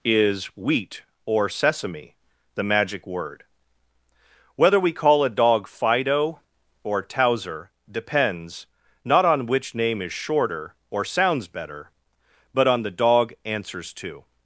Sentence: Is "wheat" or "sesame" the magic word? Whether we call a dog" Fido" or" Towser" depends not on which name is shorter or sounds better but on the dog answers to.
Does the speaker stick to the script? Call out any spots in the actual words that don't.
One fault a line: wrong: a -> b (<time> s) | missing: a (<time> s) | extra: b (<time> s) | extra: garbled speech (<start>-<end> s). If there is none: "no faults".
no faults